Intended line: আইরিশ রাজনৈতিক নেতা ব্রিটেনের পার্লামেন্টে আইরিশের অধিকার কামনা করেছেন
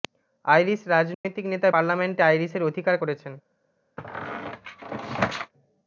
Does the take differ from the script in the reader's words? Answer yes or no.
yes